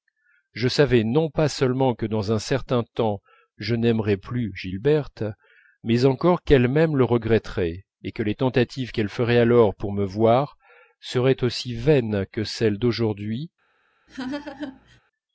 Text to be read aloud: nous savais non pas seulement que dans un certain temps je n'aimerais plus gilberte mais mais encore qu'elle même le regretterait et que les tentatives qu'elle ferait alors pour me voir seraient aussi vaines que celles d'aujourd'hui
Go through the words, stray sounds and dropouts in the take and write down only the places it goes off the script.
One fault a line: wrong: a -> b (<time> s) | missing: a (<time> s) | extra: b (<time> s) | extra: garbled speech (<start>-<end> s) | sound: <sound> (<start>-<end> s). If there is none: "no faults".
wrong: nous -> je (0.5 s)
missing: mais (6.0 s)
sound: laugh (14.1-15.0 s)